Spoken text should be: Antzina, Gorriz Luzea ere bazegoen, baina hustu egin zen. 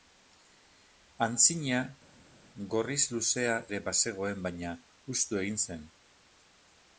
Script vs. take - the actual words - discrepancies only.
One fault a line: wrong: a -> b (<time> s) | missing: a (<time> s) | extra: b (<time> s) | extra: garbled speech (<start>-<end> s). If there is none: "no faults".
no faults